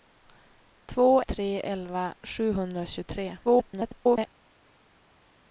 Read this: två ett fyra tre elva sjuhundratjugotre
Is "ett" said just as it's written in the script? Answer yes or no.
no